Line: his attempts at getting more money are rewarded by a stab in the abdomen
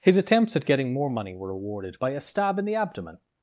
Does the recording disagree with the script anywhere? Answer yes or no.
yes